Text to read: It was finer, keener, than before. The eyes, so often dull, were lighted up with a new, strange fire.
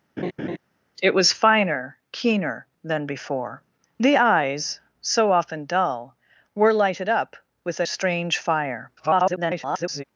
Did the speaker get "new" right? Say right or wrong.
wrong